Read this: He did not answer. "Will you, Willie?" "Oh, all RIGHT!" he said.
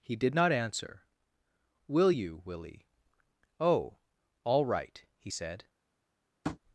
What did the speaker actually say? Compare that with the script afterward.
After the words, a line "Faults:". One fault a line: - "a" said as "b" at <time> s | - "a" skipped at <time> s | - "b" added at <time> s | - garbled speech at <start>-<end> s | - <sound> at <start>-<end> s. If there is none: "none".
He did not answer. "Will you, Willie?" "Oh, all RIGHT!" he said.
Faults:
- tap at 6.4-6.6 s